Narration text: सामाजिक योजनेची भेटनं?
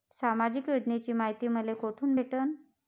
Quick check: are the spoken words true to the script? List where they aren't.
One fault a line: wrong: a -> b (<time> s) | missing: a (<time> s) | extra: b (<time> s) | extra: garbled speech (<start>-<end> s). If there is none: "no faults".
extra: मायती मले कोठून (1.1 s)